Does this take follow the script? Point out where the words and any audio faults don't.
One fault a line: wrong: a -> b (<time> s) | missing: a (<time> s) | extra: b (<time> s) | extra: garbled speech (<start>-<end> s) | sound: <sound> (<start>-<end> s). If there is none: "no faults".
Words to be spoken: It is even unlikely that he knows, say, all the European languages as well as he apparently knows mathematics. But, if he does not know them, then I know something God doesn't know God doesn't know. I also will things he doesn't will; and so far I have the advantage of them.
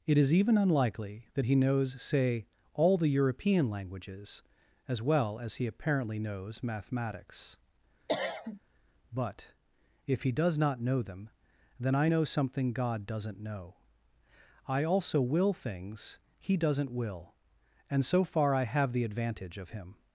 sound: cough (8.1-8.6 s)
missing: God doesn't know (13.8 s)
wrong: them -> him (19.7 s)